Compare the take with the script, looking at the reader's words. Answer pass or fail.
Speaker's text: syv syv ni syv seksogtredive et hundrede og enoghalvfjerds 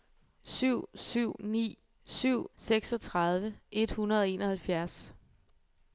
pass